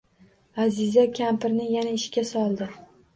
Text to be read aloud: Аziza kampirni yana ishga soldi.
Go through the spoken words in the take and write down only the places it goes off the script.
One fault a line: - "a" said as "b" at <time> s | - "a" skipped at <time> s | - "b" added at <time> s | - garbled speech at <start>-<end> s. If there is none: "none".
none